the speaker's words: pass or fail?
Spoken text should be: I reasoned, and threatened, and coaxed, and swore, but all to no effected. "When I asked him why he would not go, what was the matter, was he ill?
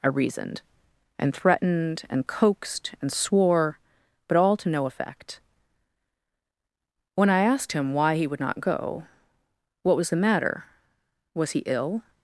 fail